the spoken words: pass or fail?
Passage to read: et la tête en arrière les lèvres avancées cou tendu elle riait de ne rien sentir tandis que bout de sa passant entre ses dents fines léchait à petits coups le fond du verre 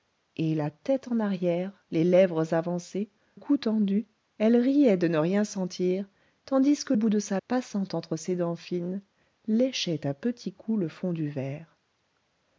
pass